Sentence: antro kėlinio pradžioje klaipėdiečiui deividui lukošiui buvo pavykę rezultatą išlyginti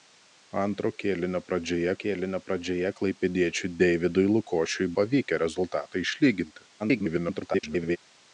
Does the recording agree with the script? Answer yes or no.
no